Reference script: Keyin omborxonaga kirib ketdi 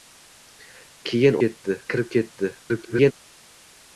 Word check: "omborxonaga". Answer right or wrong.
wrong